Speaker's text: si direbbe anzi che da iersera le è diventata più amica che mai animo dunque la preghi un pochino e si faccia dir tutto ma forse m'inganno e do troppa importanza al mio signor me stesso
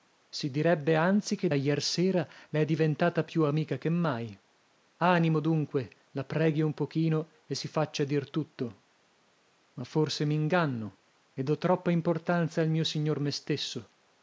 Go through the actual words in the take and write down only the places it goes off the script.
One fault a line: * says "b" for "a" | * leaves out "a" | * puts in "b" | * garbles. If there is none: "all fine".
* leaves out "da"